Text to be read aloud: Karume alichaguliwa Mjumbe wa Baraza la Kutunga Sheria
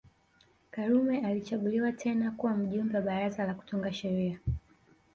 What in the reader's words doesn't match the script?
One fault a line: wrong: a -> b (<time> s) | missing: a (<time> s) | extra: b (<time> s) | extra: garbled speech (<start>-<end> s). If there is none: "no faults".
extra: tena kuwa (1.9 s)